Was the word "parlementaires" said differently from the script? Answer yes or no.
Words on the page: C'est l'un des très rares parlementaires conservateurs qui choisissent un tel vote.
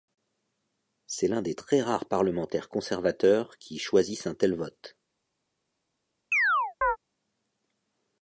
no